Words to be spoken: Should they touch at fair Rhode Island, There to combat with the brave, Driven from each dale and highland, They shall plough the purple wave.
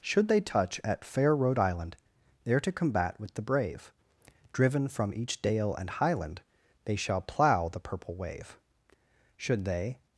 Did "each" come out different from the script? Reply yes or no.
no